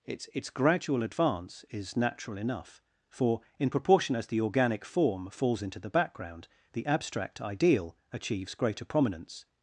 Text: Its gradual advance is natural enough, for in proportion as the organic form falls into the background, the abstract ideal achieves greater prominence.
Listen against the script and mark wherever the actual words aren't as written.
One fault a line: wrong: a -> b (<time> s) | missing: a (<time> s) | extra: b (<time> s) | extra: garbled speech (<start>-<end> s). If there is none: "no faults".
extra: its (0.3 s)